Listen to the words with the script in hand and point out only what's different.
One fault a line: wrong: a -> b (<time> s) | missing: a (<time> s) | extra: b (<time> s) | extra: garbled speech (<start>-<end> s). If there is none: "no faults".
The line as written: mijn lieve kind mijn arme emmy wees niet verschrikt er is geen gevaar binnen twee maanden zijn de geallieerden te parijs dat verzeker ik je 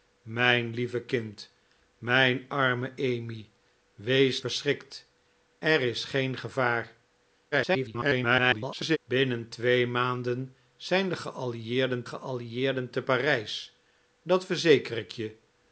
missing: niet (4.4 s)
extra: garbled speech (7.5-9.0 s)
extra: geallieerden (12.0 s)